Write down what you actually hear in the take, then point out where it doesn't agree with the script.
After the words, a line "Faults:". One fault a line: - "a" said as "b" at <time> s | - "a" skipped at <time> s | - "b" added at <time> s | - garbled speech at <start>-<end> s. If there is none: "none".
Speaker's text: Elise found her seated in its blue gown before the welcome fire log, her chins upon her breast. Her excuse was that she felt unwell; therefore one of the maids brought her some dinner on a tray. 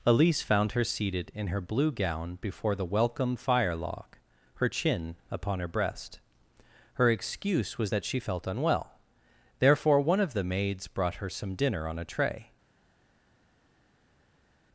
Elise found her seated in her blue gown before the welcome fire log, her chin upon her breast. Her excuse was that she felt unwell; therefore one of the maids brought her some dinner on a tray.
Faults:
- "its" said as "her" at 1.5 s
- "chins" said as "chin" at 4.6 s